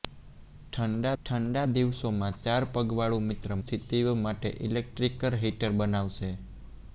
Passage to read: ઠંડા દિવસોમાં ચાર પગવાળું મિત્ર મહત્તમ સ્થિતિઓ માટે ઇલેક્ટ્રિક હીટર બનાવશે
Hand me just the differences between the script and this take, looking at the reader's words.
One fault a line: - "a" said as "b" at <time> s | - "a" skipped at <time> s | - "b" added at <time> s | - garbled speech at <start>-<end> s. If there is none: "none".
- "ઠંડા" added at 1.2 s
- "મહત્તમ" skipped at 3.5 s